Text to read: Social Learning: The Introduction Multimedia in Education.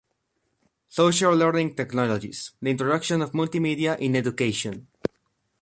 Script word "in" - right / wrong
right